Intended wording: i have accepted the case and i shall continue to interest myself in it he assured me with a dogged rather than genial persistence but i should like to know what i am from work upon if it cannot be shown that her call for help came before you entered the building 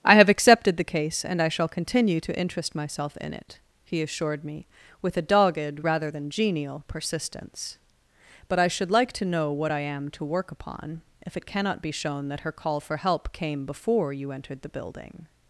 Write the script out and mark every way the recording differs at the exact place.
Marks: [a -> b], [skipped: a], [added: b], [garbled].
i have accepted the case and i shall continue to interest myself in it he assured me with a dogged rather than genial persistence but i should like to know what i am [from -> to] work upon if it cannot be shown that her call for help came before you entered the building